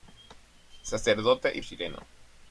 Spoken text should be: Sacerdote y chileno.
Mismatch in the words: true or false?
false